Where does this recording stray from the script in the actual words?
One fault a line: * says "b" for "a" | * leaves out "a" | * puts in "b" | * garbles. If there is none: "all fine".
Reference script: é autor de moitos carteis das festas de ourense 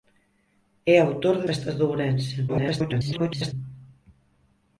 * leaves out "moitos carteis das"
* garbles